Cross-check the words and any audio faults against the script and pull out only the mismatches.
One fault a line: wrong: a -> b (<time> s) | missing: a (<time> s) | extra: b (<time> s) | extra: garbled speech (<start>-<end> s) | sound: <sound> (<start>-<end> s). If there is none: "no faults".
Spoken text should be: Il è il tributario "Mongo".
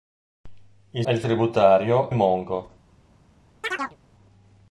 sound: chirp (3.6-4.0 s)